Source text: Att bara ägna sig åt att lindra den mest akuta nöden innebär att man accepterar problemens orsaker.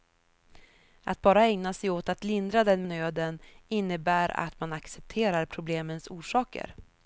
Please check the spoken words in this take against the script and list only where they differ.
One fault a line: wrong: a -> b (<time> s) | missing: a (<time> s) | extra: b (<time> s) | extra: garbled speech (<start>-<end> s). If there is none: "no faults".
missing: mest akuta (2.8 s)